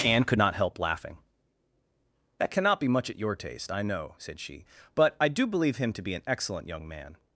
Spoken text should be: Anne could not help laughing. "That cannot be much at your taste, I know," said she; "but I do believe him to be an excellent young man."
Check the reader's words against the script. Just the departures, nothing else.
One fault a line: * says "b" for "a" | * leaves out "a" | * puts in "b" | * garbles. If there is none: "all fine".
all fine